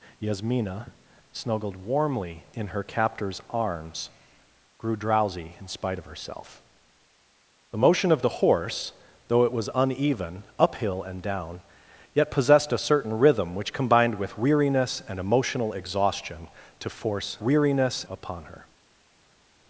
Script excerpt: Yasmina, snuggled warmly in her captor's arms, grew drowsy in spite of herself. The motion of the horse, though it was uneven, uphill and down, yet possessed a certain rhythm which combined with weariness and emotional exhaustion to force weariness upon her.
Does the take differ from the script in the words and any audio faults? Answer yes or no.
no